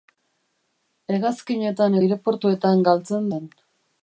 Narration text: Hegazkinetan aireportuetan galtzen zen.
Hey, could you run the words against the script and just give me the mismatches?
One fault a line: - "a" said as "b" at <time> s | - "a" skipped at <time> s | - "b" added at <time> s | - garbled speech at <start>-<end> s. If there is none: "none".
none